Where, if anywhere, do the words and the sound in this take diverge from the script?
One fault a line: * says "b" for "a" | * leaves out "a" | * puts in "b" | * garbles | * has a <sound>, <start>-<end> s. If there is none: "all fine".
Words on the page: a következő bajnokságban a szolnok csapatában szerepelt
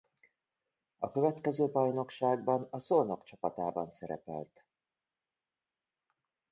all fine